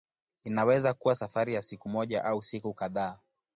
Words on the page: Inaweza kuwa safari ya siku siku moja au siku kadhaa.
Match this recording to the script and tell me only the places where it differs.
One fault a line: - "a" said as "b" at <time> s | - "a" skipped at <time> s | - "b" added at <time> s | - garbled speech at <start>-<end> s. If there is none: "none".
- "siku" skipped at 1.9 s